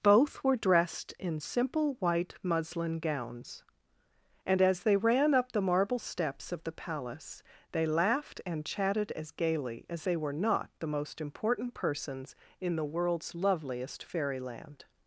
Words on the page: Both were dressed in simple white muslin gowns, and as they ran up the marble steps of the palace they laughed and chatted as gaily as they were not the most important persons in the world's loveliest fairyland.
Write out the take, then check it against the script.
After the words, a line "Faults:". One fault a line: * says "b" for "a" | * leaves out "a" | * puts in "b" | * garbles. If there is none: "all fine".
Both were dressed in simple white muslin gowns, and as they ran up the marble steps of the palace they laughed and chatted as gaily as they were not the most important persons in the world's loveliest fairyland.
Faults:
all fine